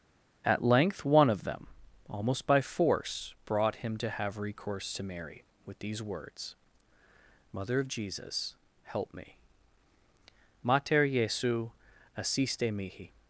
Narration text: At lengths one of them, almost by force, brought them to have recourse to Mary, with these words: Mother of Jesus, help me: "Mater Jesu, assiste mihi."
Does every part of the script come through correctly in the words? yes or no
no